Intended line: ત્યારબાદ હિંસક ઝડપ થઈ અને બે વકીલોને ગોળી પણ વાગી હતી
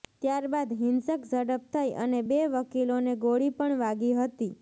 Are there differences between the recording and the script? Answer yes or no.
no